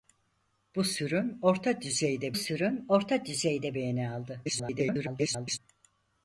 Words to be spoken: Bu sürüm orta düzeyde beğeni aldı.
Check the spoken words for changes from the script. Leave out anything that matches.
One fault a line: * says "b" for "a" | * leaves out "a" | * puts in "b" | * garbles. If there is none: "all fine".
* puts in "sürüm orta düzeyde"
* garbles